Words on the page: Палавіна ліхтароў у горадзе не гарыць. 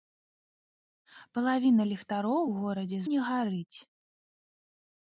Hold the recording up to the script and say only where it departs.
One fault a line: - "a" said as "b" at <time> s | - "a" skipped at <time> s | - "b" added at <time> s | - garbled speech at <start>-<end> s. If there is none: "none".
none